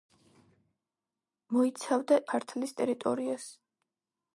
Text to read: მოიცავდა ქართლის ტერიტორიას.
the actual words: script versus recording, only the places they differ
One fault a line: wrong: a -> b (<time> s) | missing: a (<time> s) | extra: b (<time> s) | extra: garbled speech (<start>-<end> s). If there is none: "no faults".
no faults